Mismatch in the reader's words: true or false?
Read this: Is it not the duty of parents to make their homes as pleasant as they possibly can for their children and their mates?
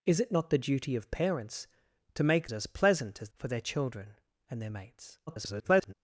true